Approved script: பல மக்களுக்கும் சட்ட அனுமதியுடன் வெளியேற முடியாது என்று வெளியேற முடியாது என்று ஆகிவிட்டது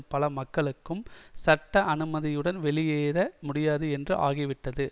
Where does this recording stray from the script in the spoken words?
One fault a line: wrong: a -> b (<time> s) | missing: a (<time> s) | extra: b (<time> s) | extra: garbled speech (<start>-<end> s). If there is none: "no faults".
missing: வெளியேற முடியாது என்று (4.2 s)